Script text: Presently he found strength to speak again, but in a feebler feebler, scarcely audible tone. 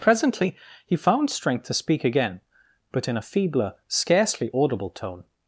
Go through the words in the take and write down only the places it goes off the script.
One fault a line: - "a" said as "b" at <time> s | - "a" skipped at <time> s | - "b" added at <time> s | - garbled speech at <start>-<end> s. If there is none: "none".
- "feebler" skipped at 3.7 s